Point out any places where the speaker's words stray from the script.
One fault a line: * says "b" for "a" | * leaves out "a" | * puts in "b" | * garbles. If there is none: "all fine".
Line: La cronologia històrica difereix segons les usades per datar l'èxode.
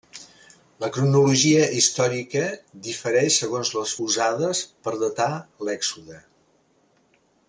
all fine